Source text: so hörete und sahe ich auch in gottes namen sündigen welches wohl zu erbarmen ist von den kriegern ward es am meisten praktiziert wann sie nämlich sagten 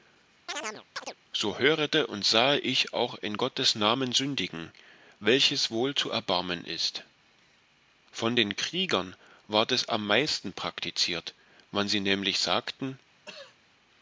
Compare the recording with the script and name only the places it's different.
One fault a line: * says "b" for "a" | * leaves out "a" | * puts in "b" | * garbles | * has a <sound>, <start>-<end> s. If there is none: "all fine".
* has a chirp, 0.5-1.2 s
* has a throat clearing, 13.3-13.6 s